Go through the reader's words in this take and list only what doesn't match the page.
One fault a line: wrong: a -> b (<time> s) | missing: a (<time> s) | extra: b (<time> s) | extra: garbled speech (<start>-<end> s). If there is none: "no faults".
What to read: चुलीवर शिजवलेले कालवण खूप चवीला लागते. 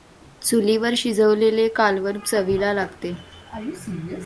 missing: खूप (2.2 s)